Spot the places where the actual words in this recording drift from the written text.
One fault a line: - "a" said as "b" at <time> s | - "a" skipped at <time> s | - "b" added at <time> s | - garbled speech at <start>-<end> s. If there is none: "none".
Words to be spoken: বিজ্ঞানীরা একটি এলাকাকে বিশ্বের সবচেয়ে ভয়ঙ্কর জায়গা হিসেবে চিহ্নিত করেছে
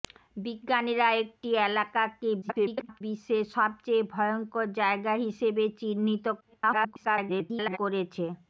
- garbled speech at 2.4-3.0 s
- garbled speech at 6.4-7.8 s